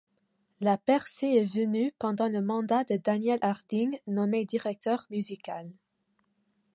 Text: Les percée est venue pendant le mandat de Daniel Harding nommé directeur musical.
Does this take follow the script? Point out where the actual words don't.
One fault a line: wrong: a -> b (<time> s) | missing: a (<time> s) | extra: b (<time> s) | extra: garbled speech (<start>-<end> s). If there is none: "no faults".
wrong: Les -> La (0.6 s)